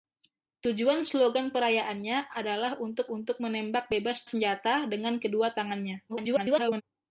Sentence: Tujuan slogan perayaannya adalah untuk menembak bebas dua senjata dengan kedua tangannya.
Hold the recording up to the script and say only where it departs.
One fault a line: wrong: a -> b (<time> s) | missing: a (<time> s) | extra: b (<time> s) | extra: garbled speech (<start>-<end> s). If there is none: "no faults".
extra: untuk (3.1 s)
missing: dua (4.3 s)
extra: garbled speech (6.1-6.8 s)